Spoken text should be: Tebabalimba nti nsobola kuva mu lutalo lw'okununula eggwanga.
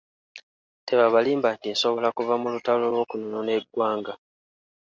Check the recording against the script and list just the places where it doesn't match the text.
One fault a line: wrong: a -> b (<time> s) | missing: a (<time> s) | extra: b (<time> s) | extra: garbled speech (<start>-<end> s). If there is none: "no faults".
no faults